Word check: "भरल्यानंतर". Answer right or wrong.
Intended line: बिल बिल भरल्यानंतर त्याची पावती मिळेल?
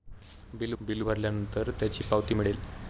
right